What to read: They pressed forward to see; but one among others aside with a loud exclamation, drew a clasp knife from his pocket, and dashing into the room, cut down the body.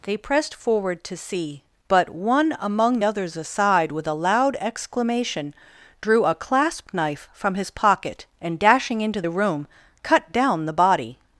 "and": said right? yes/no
yes